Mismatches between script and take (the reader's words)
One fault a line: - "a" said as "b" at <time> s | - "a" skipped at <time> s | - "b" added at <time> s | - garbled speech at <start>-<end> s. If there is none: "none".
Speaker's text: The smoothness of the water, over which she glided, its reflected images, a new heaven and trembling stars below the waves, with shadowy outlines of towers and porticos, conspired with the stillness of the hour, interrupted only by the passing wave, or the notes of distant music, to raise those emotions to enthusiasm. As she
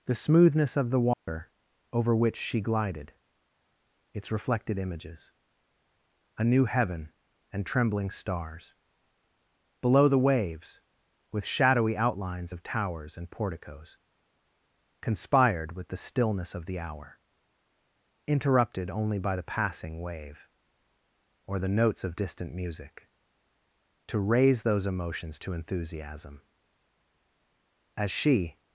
none